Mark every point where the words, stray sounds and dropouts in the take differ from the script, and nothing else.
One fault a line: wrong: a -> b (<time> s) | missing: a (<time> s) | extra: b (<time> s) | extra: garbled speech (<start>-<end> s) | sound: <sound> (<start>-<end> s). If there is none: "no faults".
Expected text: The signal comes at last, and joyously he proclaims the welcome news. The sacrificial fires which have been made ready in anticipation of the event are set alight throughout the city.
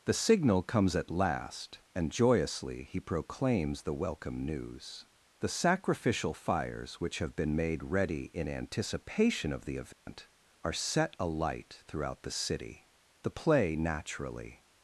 sound: dropout (9.9-10.1 s)
extra: The play naturally (13.2 s)